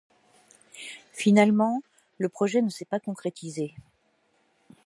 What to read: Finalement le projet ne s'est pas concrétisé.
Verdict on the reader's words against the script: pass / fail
pass